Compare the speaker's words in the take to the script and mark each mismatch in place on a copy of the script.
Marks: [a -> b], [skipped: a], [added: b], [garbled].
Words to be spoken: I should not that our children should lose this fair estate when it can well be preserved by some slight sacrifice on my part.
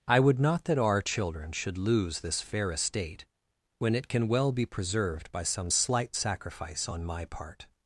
I [should -> would] not that our children should lose this fair estate when it can well be preserved by some slight sacrifice on my part.